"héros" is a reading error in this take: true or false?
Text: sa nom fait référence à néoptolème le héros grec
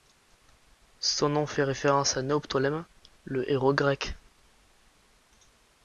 false